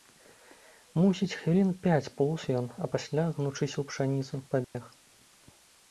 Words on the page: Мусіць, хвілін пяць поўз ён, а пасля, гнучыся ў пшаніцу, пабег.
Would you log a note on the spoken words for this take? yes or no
no